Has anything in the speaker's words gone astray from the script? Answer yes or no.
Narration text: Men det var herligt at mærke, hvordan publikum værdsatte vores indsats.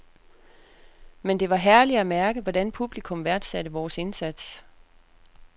no